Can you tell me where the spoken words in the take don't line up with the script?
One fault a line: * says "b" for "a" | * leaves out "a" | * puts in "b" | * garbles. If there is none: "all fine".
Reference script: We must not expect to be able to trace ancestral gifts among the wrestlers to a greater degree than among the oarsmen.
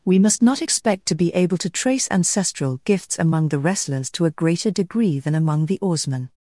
all fine